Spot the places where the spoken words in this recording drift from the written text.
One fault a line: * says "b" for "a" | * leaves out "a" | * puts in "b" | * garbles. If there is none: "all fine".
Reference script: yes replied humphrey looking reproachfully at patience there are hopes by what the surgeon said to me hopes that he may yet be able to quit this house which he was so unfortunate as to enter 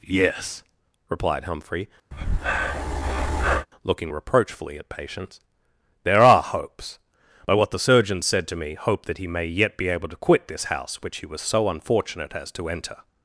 * says "hope" for "hopes"